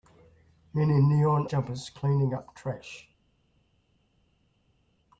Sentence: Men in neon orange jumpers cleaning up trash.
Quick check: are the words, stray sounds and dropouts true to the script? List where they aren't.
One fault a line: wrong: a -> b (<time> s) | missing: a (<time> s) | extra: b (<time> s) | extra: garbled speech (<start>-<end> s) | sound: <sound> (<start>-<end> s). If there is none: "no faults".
missing: orange (1.4 s)